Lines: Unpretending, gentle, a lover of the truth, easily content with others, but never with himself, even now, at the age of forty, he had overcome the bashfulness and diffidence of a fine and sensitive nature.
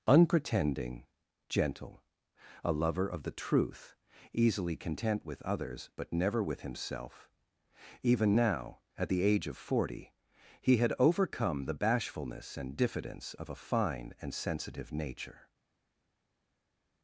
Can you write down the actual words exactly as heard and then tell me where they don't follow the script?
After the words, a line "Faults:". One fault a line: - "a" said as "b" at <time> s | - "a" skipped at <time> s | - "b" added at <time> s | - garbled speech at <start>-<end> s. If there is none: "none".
Unpretending, gentle, a lover of the truth, easily content with others, but never with himself, even now, at the age of forty, he had overcome the bashfulness and diffidence of a fine and sensitive nature.
Faults:
none